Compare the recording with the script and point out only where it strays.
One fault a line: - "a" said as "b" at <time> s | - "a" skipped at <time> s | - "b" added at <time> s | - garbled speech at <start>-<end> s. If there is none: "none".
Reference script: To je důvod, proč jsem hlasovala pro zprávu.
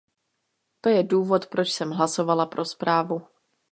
none